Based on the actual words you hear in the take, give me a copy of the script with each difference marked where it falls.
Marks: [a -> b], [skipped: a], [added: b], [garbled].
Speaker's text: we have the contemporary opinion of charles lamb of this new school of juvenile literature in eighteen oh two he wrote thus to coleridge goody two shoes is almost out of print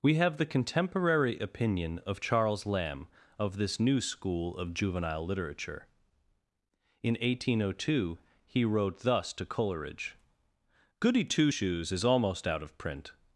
we have the contemporary opinion of charles lamb of this new school of juvenile literature in eighteen oh two he wrote thus to coleridge goody two shoes is almost out of print